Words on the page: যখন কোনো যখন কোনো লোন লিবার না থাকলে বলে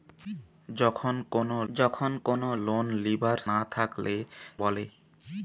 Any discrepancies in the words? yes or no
no